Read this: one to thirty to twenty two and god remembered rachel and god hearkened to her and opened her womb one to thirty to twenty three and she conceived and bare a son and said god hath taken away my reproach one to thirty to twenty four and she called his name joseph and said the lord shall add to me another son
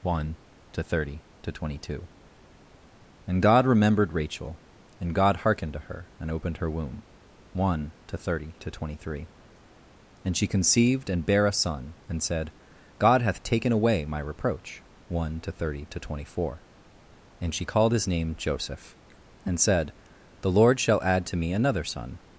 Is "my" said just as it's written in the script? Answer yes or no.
yes